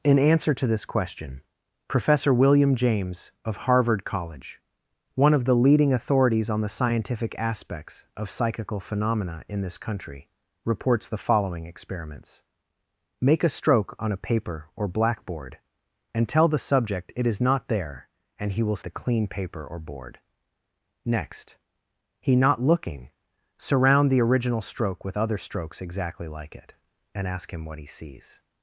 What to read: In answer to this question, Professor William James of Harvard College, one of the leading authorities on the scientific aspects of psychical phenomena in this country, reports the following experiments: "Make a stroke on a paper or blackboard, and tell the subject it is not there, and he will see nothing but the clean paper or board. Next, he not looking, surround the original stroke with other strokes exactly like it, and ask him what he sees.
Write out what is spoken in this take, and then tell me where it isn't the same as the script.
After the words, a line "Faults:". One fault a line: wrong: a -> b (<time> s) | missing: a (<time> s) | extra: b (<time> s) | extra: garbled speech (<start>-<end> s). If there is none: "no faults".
In answer to this question, Professor William James of Harvard College, one of the leading authorities on the scientific aspects of psychical phenomena in this country, reports the following experiments: "Make a stroke on a paper or blackboard, and tell the subject it is not there, and he will the clean paper or board. Next, he not looking, surround the original stroke with other strokes exactly like it, and ask him what he sees.
Faults:
missing: see nothing but (18.8 s)